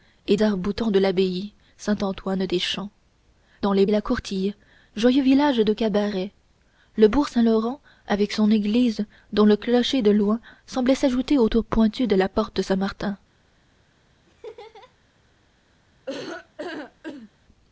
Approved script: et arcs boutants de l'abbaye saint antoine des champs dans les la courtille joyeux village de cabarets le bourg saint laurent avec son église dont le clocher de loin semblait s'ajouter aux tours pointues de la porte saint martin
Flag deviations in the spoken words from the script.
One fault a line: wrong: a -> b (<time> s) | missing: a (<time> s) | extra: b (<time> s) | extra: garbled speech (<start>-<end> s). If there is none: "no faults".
no faults